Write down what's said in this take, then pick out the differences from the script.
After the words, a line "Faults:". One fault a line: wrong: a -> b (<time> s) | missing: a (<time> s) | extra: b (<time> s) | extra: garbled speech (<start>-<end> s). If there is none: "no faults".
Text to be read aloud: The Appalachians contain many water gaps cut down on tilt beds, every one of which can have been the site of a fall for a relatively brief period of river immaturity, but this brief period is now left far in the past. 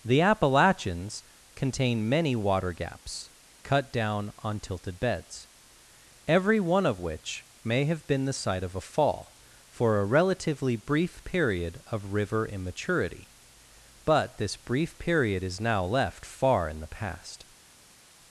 The Appalachians contain many water gaps cut down on tilted beds, every one of which may have been the site of a fall for a relatively brief period of river immaturity, but this brief period is now left far in the past.
Faults:
wrong: tilt -> tilted (4.6 s)
wrong: can -> may (7.6 s)